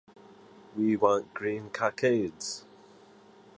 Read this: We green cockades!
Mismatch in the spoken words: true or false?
true